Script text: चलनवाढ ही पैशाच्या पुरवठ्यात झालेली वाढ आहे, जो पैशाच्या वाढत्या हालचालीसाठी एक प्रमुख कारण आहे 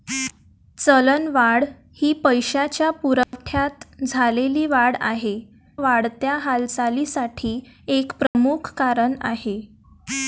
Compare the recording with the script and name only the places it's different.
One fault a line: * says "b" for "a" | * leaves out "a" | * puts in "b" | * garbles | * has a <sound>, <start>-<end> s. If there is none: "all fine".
* has a dropout, 3.2-3.3 s
* leaves out "जो पैशाच्या"
* has a dropout, 8.3-8.3 s